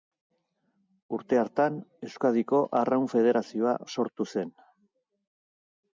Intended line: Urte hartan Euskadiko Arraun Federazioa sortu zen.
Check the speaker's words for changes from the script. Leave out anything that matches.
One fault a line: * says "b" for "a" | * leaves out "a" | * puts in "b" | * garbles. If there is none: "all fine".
all fine